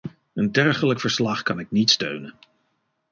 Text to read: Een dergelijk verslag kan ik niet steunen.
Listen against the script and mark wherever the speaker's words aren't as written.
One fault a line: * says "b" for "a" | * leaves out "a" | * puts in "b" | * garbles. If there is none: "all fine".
all fine